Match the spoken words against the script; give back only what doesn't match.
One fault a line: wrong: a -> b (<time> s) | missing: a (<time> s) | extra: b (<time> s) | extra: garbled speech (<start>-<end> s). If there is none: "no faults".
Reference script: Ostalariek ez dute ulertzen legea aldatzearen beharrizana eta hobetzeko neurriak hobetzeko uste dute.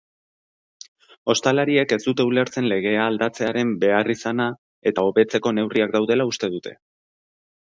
wrong: hobetzeko -> daudela (6.0 s)